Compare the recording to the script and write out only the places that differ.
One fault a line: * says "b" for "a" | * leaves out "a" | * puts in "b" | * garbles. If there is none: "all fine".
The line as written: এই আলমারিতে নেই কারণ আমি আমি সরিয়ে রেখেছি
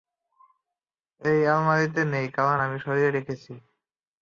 * leaves out "আমি"